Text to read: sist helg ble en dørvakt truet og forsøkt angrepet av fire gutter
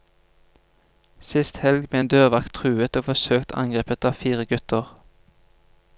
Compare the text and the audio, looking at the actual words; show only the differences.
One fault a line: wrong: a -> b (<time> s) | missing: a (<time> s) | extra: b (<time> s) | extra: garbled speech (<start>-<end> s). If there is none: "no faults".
no faults